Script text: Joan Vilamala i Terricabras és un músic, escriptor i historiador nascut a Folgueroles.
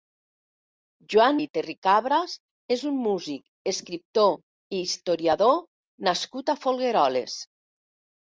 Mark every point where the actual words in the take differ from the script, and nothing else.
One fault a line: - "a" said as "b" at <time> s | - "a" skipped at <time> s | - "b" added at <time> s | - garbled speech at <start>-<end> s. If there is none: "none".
- "Vilamala" skipped at 1.4 s